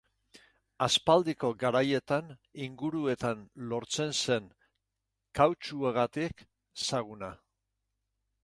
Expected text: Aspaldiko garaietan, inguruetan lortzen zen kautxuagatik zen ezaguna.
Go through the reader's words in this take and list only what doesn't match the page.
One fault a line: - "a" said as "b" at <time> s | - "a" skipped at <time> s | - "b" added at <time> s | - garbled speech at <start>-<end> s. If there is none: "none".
- "zen" skipped at 6.5 s